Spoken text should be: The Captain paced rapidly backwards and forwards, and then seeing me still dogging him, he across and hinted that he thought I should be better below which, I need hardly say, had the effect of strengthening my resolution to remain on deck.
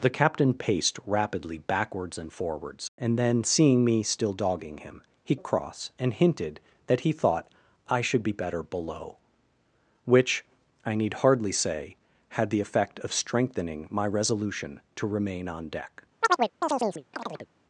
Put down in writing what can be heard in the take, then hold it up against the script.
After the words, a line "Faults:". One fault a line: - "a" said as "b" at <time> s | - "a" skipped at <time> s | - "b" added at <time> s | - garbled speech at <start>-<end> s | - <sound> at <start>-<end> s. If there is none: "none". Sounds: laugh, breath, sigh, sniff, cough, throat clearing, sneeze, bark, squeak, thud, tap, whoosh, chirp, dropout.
The Captain paced rapidly backwards and forwards, and then seeing me still dogging him, he across and hinted that he thought I should be better below which, I need hardly say, had the effect of strengthening my resolution to remain on deck.
Faults:
- chirp at 16.2-17.5 s